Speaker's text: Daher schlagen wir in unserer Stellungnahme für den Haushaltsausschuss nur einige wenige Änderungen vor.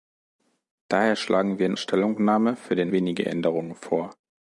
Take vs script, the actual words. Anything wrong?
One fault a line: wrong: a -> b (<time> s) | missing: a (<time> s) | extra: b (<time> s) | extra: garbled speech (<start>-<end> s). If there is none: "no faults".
missing: unserer (1.8 s)
missing: Haushaltsausschuss nur einige (2.9 s)